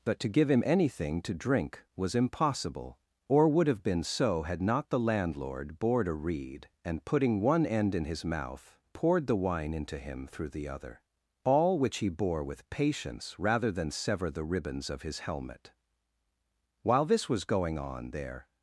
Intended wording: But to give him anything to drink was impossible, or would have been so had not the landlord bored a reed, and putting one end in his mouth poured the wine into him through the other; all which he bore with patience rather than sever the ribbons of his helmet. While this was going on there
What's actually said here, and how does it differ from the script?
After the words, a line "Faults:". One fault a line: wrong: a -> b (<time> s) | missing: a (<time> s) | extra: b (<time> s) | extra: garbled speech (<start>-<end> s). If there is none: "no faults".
But to give him anything to drink was impossible, or would have been so had not the landlord bored a reed, and putting one end in his mouth poured the wine into him through the other; all which he bore with patience rather than sever the ribbons of his helmet. While this was going on there
Faults:
no faults